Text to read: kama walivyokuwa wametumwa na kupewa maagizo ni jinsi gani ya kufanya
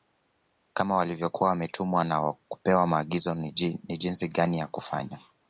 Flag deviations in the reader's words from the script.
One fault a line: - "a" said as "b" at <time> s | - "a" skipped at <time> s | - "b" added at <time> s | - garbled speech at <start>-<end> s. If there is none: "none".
none